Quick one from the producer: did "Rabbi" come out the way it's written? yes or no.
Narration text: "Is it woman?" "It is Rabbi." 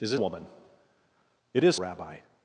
yes